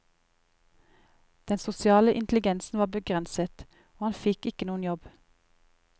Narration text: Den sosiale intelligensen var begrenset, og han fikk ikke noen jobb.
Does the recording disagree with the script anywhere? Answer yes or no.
no